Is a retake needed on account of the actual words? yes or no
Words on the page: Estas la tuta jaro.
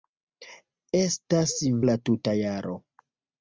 no